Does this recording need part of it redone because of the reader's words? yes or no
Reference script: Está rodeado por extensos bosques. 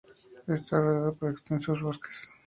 no